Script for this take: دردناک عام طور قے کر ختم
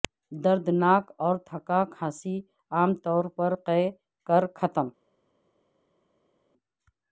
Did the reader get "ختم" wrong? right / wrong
right